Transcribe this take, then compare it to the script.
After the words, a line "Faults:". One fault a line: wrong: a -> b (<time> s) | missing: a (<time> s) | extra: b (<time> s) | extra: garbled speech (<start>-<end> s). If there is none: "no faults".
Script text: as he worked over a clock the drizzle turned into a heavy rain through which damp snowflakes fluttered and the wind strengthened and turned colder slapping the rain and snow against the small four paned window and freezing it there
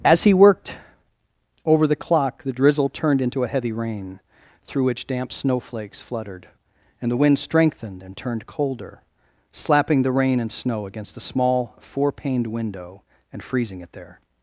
as he worked over the clock the drizzle turned into a heavy rain through which damp snowflakes fluttered and the wind strengthened and turned colder slapping the rain and snow against the small four paned window and freezing it there
Faults:
wrong: a -> the (1.8 s)